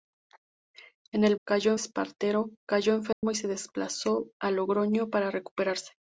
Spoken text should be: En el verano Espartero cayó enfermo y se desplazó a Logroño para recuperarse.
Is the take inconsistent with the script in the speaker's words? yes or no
yes